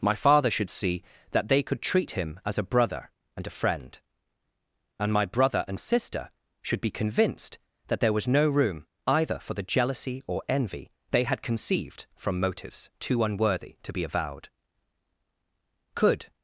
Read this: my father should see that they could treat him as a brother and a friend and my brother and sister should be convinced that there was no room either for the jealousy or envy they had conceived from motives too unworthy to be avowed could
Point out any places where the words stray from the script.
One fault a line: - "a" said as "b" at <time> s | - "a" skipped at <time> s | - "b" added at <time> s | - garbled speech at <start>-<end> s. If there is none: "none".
none